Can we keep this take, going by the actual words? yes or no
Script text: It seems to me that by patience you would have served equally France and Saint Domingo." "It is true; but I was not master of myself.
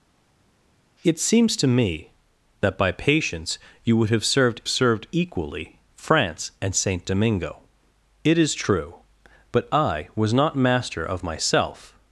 no